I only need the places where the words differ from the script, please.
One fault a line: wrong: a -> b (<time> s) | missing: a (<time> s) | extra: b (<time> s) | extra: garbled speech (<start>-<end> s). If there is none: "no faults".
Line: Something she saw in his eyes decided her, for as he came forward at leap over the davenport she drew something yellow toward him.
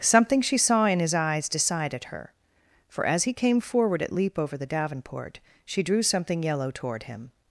no faults